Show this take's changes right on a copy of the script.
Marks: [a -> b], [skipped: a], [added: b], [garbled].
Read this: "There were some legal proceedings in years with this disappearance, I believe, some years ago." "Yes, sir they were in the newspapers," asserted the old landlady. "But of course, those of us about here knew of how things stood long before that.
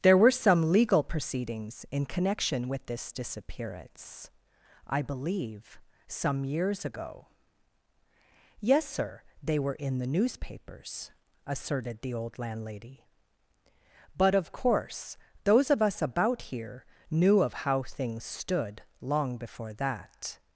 "There were some legal proceedings in [years -> connection] with this disappearance, I believe, some years ago." "Yes, sir they were in the newspapers," asserted the old landlady. "But of course, those of us about here knew of how things stood long before that.